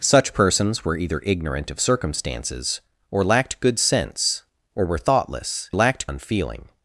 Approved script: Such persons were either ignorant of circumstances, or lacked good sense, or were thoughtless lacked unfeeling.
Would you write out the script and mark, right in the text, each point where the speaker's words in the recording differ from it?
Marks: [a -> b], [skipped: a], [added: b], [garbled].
Such persons were either ignorant of circumstances, or lacked good sense, or were thoughtless lacked unfeeling.